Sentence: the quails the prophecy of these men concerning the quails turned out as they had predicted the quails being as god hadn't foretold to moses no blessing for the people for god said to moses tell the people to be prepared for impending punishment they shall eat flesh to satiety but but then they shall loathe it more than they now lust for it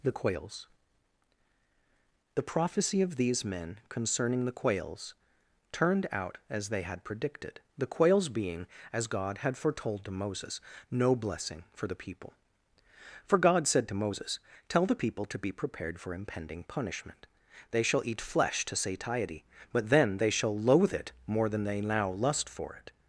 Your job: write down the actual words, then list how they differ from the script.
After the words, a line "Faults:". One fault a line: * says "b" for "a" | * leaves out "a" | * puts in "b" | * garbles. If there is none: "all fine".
the quails the prophecy of these men concerning the quails turned out as they had predicted the quails being as god had foretold to moses no blessing for the people for god said to moses tell the people to be prepared for impending punishment they shall eat flesh to satiety but then they shall loathe it more than they now lust for it
Faults:
* says "had" for "hadn't"
* leaves out "but"